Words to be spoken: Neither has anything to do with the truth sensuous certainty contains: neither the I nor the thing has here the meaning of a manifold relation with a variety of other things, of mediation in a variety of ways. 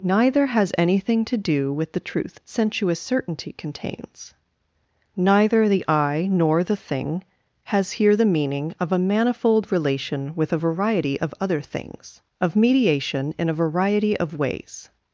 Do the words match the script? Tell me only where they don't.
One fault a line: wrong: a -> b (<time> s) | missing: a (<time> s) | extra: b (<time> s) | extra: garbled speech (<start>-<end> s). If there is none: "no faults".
no faults